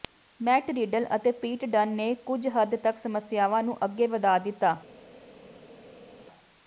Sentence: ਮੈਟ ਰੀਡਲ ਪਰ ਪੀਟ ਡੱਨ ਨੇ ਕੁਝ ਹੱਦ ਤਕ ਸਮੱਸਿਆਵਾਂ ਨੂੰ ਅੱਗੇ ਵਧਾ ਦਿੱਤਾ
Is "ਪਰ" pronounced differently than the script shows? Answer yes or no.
yes